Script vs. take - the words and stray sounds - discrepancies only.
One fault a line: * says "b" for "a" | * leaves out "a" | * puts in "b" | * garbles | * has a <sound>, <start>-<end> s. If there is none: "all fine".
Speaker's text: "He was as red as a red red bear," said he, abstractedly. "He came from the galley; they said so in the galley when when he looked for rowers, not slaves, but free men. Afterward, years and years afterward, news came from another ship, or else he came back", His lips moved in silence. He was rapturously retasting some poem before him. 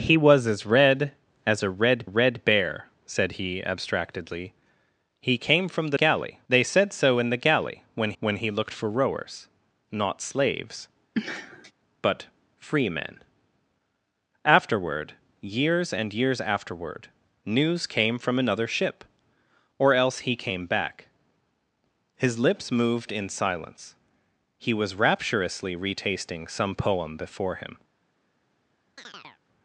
* has a sniff, 11.1-11.7 s
* has a chirp, 29.0-29.4 s